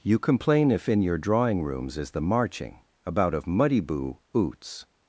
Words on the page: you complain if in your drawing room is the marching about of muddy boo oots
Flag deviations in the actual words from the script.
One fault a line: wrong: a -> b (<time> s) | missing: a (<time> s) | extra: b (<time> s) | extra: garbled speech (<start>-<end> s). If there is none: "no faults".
wrong: room -> rooms (1.6 s)